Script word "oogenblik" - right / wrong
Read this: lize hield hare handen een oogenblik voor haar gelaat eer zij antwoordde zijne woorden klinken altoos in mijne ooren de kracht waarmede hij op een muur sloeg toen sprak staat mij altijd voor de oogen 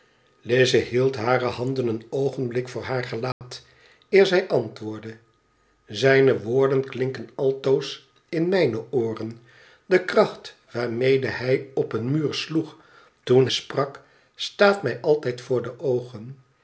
right